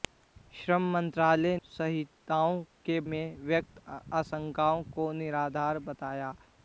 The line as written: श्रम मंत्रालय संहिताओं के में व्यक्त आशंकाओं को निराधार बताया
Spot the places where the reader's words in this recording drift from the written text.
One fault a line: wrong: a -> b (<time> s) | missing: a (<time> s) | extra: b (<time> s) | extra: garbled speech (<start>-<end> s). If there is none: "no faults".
no faults